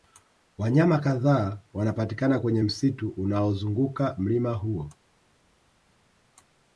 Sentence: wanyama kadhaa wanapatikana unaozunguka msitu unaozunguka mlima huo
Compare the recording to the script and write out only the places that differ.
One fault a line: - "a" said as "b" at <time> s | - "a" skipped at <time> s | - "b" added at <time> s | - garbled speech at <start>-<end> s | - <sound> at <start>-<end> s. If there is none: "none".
- "unaozunguka" said as "kwenye" at 2.4 s